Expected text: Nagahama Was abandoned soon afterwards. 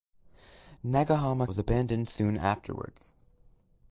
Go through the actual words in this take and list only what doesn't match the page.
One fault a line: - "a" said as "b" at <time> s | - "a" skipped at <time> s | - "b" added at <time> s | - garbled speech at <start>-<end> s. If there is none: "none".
none